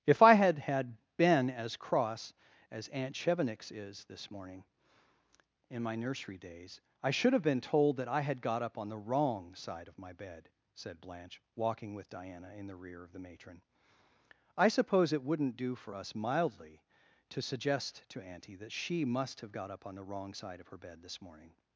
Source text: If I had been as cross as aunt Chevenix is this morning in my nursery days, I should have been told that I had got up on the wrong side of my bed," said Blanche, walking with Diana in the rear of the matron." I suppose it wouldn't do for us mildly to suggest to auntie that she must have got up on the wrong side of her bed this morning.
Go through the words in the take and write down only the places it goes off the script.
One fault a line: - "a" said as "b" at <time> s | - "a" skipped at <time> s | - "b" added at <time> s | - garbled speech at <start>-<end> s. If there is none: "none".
- "had" added at 0.6 s